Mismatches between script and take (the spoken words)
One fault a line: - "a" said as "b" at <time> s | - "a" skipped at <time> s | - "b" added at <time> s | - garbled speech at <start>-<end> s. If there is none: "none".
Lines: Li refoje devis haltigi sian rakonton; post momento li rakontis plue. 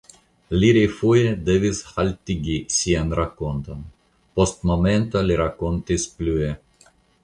none